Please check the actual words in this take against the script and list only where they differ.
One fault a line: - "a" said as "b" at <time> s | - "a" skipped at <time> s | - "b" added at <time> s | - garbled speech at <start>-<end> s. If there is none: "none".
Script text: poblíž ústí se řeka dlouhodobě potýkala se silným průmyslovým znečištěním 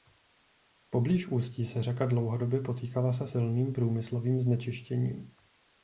none